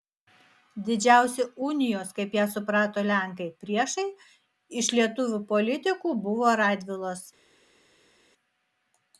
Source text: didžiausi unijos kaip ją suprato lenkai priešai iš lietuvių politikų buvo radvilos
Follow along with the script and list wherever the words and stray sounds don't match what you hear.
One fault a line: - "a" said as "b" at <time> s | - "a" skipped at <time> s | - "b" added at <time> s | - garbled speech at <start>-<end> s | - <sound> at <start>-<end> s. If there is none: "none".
none